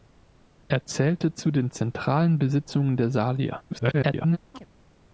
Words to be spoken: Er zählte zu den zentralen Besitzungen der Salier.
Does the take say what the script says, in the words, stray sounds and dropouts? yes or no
no